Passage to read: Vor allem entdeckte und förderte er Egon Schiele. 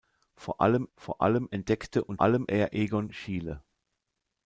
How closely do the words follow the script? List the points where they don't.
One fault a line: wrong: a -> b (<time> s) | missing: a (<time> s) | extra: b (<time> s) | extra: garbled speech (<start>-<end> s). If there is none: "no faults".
extra: vor allem (0.9 s)
wrong: förderte -> allem (2.2 s)